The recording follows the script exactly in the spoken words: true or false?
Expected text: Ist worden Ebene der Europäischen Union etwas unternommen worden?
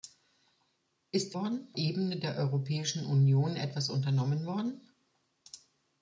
true